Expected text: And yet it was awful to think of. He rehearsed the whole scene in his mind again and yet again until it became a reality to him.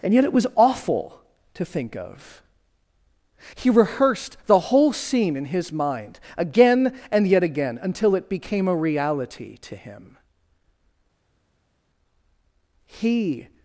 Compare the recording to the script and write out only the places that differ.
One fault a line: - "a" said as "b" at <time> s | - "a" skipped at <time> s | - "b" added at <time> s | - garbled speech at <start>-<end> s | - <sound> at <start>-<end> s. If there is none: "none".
- "He" added at 12.9 s